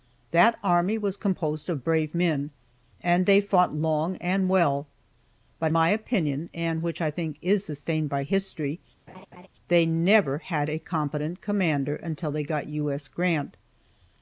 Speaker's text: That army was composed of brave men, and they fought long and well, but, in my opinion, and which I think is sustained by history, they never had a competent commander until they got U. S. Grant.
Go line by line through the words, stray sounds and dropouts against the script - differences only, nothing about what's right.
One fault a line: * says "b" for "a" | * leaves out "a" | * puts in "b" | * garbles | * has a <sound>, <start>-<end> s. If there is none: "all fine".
* leaves out "in"
* has a laugh, 9.1-9.5 s